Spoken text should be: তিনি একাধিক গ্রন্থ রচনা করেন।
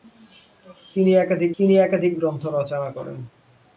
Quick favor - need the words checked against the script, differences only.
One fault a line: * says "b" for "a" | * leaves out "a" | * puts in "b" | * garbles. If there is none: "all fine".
* puts in "তিনি একাধিক"